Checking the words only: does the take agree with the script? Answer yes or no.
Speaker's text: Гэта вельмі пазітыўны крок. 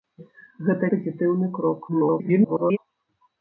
no